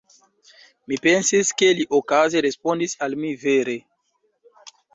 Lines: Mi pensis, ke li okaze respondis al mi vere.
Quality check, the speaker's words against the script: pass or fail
pass